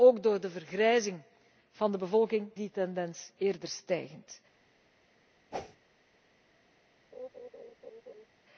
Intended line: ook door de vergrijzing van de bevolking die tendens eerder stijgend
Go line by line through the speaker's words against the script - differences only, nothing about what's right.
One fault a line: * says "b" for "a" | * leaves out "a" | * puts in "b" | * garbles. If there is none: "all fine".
all fine